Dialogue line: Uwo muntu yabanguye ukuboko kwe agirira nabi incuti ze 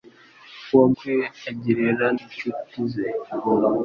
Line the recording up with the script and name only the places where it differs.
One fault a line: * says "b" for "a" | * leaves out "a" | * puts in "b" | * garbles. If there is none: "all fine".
* leaves out "muntu yabanguye ukuboko"
* leaves out "nabi"